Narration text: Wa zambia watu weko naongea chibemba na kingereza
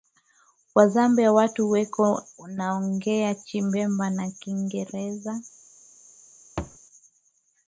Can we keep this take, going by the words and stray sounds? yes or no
no